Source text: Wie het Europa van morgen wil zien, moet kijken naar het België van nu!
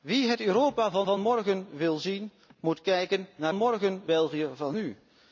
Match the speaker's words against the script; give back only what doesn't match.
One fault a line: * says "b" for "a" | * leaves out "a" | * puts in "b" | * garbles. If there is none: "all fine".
* puts in "van"
* says "morgen" for "het"